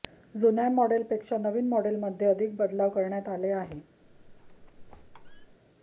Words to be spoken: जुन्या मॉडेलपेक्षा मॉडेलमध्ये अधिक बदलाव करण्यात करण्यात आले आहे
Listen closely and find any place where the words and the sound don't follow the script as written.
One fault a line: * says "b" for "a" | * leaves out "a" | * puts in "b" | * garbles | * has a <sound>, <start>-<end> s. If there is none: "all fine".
* puts in "नवीन"
* leaves out "करण्यात"
* has a squeak, 4.0-5.6 s